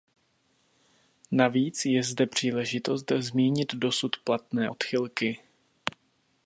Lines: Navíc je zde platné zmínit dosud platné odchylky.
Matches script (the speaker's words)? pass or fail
fail